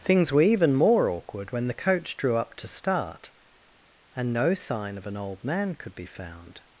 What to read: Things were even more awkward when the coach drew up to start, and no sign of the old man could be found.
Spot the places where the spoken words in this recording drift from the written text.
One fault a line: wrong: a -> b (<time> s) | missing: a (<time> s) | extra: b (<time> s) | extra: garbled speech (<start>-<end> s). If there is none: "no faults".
wrong: the -> an (5.0 s)